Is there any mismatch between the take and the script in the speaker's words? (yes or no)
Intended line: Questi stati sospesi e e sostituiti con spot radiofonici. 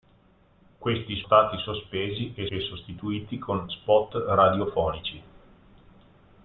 no